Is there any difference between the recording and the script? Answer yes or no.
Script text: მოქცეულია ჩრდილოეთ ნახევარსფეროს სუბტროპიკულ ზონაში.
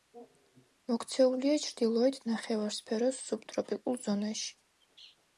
no